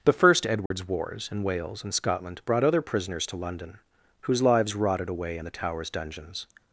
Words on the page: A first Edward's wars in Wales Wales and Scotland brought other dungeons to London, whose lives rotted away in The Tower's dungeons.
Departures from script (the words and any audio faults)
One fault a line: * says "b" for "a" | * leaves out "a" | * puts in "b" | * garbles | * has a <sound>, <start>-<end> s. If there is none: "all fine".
* says "The" for "A"
* has a dropout, 0.7-0.7 s
* leaves out "Wales"
* says "prisoners" for "dungeons"